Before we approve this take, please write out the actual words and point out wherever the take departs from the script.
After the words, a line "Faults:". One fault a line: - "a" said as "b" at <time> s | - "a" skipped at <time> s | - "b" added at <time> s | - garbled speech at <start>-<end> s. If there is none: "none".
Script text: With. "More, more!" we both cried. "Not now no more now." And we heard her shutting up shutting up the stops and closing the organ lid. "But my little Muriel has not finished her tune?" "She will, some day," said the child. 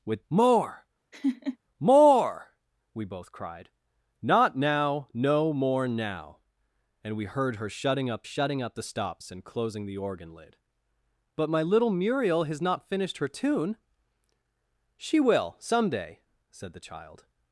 With. "More, more!" we both cried. "Not now no more now." And we heard her shutting up shutting up the stops and closing the organ lid. "But my little Muriel has not finished her tune?" "She will, some day," said the child.
Faults:
none